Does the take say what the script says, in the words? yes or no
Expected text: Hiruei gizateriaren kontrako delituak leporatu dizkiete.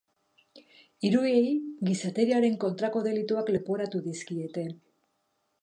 yes